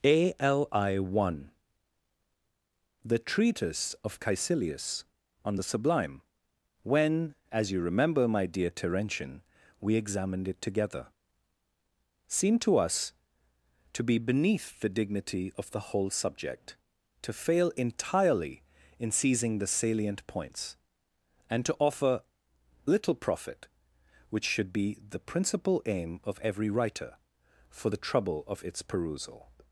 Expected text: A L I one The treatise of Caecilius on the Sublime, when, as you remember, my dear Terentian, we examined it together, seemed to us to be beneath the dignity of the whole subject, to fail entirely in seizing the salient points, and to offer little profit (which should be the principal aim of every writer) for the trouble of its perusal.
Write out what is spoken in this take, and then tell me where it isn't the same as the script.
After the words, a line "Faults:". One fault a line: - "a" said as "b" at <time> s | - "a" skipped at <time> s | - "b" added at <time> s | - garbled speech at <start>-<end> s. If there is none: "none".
A L I one The treatise of Caecilius on the Sublime, when, as you remember, my dear Terentian, we examined it together, seemed to us to be beneath the dignity of the whole subject, to fail entirely in seizing the salient points, and to offer little profit (which should be the principal aim of every writer) for the trouble of its perusal.
Faults:
none